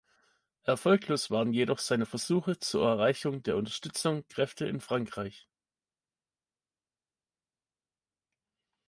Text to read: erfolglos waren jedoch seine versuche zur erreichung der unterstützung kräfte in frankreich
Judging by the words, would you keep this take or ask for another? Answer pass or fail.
pass